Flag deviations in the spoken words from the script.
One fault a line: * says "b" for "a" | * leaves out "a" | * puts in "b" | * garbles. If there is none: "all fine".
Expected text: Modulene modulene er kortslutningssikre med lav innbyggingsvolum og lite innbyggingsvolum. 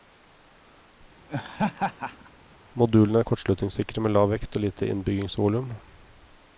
* leaves out "modulene"
* says "vekt" for "innbyggingsvolum"